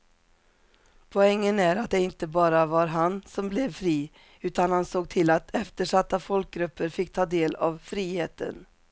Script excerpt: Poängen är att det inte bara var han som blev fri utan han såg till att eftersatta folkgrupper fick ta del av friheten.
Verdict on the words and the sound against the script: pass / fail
pass